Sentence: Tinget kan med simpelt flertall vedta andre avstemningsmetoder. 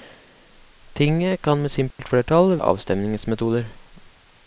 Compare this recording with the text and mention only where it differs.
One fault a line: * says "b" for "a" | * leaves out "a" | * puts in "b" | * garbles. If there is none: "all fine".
* leaves out "vedta andre"